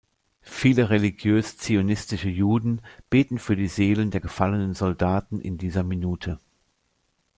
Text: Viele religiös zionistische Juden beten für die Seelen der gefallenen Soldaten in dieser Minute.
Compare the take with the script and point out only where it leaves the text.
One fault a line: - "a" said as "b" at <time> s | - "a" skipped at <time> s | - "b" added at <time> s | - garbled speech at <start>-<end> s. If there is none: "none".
none